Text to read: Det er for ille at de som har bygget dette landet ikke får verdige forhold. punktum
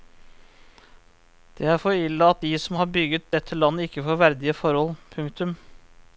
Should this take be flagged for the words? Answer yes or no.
no